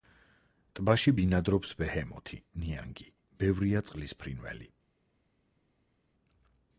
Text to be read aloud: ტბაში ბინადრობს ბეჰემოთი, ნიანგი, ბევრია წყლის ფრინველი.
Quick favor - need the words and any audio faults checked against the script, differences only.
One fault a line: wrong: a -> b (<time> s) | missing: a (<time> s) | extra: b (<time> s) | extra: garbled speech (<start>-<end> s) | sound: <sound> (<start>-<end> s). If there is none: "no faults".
no faults